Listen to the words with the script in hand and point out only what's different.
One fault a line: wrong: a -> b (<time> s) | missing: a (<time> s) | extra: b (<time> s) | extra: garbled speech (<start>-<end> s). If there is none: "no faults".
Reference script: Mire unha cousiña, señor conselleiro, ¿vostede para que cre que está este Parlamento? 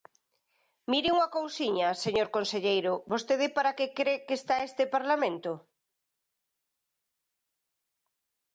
no faults